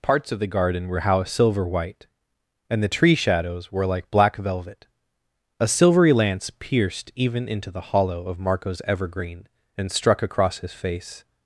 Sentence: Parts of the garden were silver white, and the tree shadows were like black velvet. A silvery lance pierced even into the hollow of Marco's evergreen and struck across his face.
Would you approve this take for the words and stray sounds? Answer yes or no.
no